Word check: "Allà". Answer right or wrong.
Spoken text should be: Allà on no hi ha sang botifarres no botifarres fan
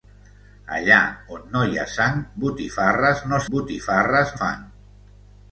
right